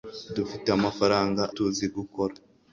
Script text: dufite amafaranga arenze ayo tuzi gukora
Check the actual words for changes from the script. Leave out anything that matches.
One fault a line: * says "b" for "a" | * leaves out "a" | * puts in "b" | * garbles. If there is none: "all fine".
* leaves out "arenze ayo"